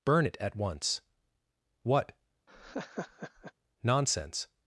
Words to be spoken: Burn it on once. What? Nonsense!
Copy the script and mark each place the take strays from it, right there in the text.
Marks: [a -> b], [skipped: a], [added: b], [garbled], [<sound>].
Burn it [on -> at] once. What? [laugh] Nonsense!